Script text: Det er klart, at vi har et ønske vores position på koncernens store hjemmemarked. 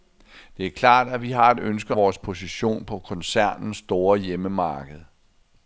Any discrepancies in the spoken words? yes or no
no